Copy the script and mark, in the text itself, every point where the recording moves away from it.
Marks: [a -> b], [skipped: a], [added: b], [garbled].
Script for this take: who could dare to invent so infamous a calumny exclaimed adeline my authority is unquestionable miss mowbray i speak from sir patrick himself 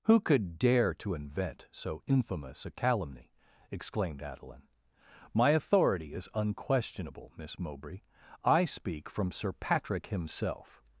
who could dare to invent so infamous a calumny exclaimed adeline my authority is unquestionable miss mowbray i speak from sir patrick himself